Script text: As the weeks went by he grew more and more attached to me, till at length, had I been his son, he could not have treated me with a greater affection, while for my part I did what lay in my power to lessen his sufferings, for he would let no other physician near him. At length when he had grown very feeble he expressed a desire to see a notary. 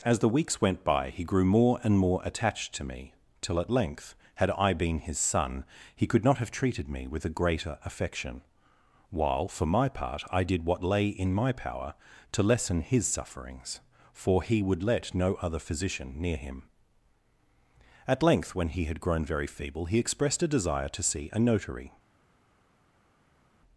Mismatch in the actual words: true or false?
false